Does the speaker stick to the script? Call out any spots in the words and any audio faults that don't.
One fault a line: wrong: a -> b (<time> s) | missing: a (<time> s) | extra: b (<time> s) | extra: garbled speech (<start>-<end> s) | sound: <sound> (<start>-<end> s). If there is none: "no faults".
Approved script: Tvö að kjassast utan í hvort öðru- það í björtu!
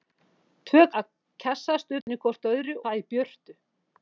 sound: dropout (2.0-2.1 s)